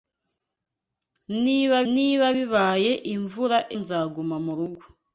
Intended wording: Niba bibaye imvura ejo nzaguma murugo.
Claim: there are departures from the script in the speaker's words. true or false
true